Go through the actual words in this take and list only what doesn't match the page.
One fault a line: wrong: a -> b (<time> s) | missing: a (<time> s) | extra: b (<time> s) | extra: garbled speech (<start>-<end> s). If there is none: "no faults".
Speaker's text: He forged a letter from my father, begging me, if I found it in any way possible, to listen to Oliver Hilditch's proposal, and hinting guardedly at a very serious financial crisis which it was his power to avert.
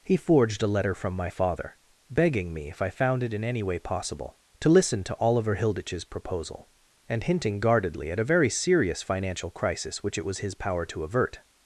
no faults